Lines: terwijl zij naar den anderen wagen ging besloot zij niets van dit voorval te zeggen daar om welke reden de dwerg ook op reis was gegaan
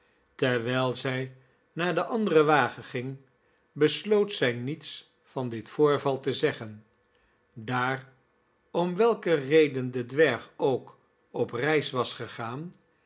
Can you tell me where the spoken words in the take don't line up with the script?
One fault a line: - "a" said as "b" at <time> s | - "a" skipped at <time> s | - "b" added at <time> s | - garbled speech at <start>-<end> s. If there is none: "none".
none